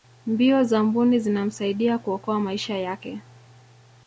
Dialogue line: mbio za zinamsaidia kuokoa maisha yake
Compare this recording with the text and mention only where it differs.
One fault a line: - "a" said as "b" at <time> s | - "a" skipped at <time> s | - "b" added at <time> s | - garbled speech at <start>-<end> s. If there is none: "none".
- "mbuni" added at 0.8 s